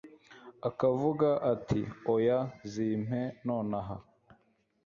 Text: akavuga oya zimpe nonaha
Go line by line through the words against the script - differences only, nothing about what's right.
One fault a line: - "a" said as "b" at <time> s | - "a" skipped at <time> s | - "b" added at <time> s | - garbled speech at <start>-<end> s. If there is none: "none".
- "ati" added at 1.5 s